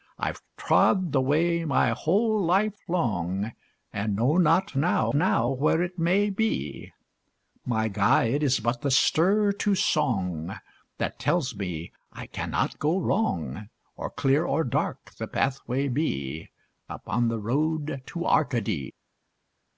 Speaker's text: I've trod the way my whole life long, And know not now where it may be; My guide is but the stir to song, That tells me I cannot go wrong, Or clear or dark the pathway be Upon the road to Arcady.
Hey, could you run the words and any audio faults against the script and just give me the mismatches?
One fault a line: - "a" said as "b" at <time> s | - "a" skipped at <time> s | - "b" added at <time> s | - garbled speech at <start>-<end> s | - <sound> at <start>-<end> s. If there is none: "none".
- "now" added at 5.1 s